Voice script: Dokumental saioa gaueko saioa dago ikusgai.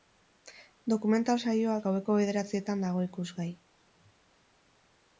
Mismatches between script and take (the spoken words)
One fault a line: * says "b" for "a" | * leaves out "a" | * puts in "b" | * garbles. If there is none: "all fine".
* says "bederatzietan" for "saioa"